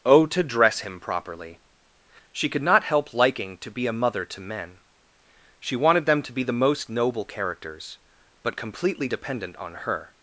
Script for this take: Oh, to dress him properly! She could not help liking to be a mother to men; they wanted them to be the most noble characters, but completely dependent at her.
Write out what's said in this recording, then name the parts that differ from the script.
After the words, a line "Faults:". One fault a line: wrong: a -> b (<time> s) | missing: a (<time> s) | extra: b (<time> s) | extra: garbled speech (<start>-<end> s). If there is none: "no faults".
Oh, to dress him properly! She could not help liking to be a mother to men; she wanted them to be the most noble characters, but completely dependent on her.
Faults:
wrong: they -> she (5.6 s)
wrong: at -> on (9.6 s)